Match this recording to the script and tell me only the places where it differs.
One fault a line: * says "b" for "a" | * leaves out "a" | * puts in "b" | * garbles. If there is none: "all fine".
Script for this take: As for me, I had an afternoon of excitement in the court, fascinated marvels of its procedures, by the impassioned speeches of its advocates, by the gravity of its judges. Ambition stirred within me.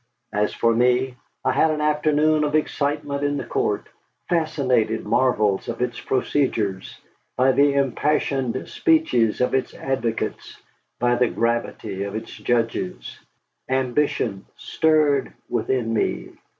all fine